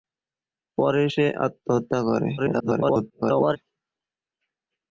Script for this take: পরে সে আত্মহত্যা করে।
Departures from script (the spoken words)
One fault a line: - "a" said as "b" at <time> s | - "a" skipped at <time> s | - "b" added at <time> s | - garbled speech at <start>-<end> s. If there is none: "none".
- garbled speech at 2.4-3.6 s